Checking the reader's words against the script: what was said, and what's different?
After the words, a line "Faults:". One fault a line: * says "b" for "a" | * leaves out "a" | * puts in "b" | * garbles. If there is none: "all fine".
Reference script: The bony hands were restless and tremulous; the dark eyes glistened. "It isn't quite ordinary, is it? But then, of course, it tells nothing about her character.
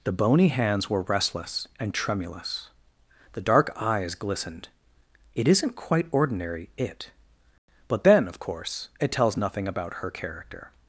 The bony hands were restless and tremulous; the dark eyes glistened. "It isn't quite ordinary, it? But then, of course, it tells nothing about her character.
Faults:
* leaves out "is"